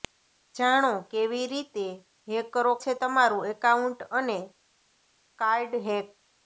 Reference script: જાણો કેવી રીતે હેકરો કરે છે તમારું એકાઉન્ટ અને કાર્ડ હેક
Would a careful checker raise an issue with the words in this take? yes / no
yes